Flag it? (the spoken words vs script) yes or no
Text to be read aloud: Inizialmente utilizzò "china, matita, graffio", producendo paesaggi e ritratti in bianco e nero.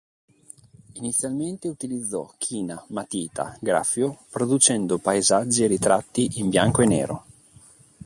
no